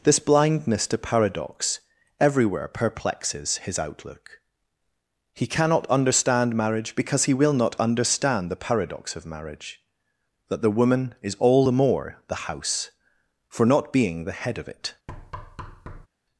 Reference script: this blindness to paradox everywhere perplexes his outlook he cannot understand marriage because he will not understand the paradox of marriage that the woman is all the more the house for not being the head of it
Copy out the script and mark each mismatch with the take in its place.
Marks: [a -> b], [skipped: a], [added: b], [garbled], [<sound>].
this blindness to paradox everywhere perplexes his outlook he cannot understand marriage because he will not understand the paradox of marriage that the woman is all the more the house for not being the head of it [thud]